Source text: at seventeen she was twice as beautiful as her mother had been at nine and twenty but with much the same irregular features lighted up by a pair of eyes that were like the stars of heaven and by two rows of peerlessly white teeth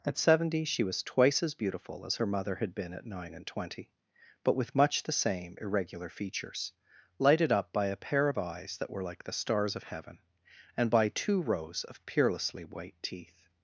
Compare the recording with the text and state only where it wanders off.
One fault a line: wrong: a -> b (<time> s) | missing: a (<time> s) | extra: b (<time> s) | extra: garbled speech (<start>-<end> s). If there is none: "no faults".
wrong: seventeen -> seventy (0.2 s)